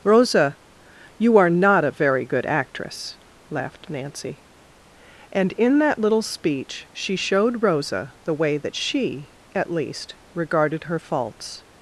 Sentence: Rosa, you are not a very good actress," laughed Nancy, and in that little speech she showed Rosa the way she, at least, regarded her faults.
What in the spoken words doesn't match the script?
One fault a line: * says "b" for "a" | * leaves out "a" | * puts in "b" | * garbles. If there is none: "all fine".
* puts in "that"